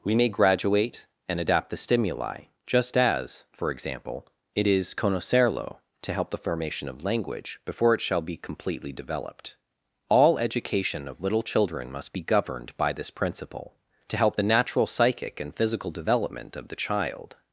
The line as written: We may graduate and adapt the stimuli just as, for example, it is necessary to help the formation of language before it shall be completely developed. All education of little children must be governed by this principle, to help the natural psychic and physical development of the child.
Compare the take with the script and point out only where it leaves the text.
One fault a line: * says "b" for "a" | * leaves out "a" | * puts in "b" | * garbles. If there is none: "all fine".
* says "conocerlo" for "necessary"